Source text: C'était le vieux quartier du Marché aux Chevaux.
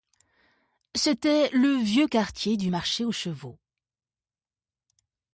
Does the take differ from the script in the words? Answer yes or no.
no